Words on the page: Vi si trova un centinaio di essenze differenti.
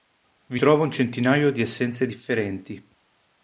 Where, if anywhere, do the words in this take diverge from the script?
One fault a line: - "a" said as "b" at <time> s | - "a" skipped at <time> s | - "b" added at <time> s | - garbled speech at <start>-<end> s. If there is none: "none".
- "si" skipped at 0.6 s